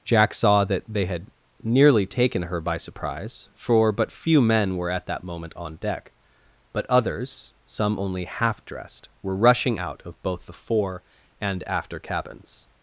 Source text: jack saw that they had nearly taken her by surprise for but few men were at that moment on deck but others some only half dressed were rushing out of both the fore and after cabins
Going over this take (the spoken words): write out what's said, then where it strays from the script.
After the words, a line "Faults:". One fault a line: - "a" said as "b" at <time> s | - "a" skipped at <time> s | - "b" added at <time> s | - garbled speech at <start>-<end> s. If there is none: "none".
jack saw that they had nearly taken her by surprise for but few men were at that moment on deck but others some only half dressed were rushing out of both the fore and after cabins
Faults:
none